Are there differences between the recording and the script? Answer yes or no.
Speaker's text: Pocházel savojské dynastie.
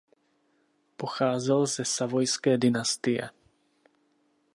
yes